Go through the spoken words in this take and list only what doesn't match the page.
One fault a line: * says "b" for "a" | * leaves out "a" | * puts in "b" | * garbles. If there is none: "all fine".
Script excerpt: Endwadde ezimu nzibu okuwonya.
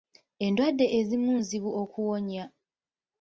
all fine